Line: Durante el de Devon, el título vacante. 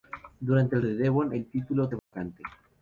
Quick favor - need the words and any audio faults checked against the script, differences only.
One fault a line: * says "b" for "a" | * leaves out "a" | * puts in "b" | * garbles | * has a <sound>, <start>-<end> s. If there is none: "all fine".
* has a dropout, 2.0-2.1 s